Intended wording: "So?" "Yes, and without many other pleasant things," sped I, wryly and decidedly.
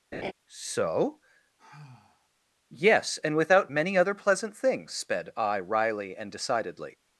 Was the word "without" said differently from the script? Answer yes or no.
no